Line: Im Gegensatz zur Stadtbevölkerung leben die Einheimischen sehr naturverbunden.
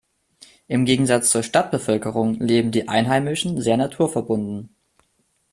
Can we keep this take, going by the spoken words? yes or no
yes